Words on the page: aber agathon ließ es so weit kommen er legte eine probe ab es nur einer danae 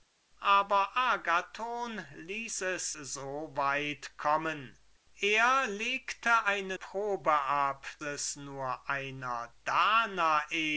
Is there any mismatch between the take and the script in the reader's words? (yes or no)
no